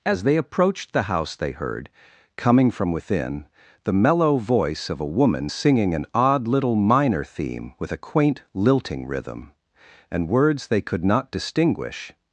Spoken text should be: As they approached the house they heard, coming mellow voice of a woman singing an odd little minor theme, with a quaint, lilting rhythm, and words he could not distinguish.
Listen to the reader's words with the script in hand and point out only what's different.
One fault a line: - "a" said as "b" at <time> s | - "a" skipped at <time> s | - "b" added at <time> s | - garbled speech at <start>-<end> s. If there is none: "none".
- "from within the" added at 2.7 s
- "he" said as "they" at 10.7 s